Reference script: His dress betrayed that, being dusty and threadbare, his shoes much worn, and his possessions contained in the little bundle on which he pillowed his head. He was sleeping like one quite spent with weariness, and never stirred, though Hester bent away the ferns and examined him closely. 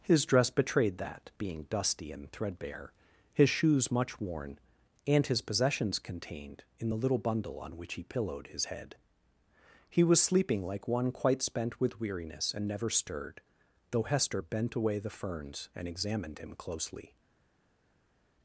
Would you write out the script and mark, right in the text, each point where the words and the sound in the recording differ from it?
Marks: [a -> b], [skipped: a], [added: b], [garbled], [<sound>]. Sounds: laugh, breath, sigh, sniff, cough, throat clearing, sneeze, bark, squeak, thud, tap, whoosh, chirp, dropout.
His dress betrayed that, being dusty and threadbare, his shoes much worn, and his possessions contained in the little bundle on which he pillowed his head. He was sleeping like one quite spent with weariness, and never stirred, though Hester bent away the ferns and examined him closely.